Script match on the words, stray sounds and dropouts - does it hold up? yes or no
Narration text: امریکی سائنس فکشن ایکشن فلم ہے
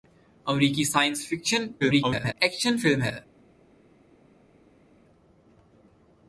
no